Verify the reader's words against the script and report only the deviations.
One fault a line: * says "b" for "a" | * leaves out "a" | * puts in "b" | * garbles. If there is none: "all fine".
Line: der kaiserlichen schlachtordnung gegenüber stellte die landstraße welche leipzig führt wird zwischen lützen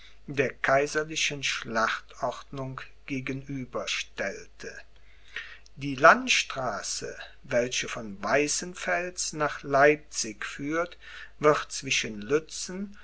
* puts in "von weißenfels nach"